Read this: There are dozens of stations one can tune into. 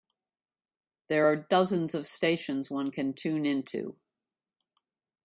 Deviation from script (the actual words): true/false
false